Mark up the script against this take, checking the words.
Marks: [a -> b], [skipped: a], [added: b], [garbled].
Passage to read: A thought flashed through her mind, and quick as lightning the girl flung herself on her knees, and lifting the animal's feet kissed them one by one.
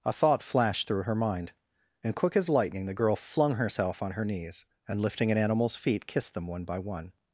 A thought flashed through her mind, and quick as lightning the girl flung herself on her knees, and lifting [the -> an] animal's feet kissed them one by one.